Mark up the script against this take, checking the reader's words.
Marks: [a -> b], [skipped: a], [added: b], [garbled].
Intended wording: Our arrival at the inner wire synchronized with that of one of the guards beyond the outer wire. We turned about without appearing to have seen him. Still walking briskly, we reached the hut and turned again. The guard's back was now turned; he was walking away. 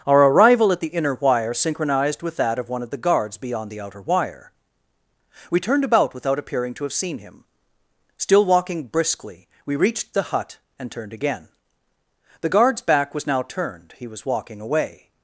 Our arrival at the inner wire synchronized with that of one of the guards beyond the outer wire. We turned about without appearing to have seen him. Still walking briskly, we reached the hut and turned again. The guard's back was now turned; he was walking away.